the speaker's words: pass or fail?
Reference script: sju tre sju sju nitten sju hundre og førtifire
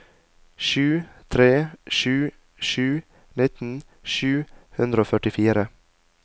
pass